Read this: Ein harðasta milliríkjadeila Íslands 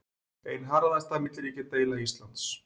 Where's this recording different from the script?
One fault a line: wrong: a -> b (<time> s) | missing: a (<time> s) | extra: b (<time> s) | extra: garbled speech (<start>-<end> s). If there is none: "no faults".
no faults